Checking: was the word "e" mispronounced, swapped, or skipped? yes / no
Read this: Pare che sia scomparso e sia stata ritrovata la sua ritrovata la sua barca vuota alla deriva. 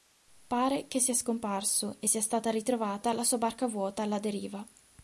no